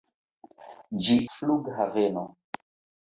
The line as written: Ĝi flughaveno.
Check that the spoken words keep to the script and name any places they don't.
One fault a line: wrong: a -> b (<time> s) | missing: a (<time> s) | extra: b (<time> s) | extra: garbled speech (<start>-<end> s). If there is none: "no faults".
no faults